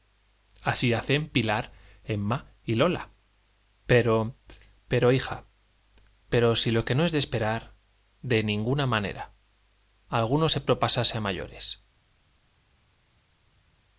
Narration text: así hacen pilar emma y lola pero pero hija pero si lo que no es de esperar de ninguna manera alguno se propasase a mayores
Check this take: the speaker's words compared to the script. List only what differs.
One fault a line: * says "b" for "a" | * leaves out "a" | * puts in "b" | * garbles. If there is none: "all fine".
all fine